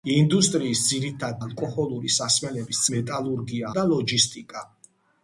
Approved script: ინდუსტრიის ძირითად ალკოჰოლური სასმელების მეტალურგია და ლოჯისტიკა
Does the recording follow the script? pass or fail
pass